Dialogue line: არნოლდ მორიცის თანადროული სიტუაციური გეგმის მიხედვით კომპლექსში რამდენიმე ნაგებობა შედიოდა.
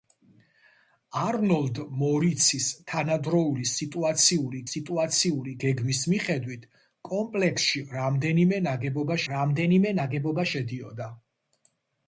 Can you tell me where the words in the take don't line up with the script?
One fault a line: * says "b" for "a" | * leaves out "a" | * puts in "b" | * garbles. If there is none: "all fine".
* puts in "სიტუაციური"
* puts in "რამდენიმე ნაგებობა"